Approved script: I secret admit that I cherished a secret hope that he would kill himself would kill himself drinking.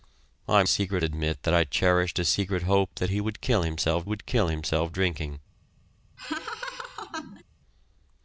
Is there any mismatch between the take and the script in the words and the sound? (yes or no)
yes